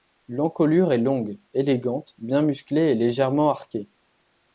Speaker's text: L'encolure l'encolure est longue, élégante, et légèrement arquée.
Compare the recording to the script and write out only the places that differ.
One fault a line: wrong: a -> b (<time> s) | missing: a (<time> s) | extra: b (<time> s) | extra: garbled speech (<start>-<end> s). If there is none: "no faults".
missing: l'encolure (0.9 s)
extra: bien musclée (2.2 s)